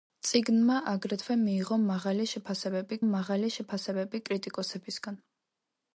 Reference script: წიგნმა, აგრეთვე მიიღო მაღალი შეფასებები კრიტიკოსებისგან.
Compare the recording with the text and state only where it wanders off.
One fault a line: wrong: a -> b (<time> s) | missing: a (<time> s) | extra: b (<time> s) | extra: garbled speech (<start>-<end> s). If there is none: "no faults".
extra: მაღალი შეფასებები (3.1 s)